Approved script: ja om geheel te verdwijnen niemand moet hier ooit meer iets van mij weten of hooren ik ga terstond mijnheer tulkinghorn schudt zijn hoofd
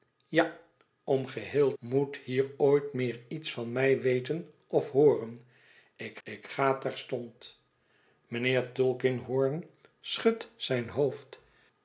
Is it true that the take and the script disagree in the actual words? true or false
true